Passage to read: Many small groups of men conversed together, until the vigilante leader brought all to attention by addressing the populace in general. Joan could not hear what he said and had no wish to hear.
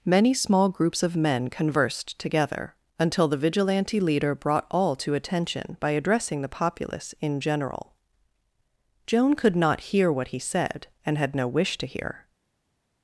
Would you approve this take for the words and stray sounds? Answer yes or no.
yes